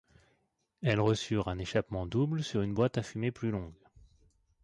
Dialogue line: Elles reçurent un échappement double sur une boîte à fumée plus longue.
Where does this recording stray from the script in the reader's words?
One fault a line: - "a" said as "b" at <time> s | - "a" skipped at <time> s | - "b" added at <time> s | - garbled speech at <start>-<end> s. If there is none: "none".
none